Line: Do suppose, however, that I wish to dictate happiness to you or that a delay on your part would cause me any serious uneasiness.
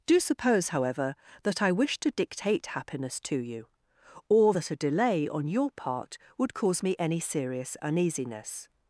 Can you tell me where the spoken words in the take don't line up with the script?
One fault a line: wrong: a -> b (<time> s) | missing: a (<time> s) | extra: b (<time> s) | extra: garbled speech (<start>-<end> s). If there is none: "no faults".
no faults